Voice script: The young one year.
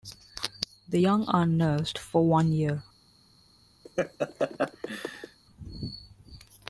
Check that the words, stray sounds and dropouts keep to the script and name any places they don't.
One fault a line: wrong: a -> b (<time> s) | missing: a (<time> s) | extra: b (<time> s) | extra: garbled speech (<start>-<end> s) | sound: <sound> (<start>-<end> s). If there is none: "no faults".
extra: are nursed for (1.3 s)
sound: laugh (3.8-5.4 s)